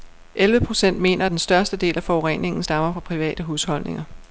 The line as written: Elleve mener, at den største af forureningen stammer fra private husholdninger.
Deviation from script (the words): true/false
true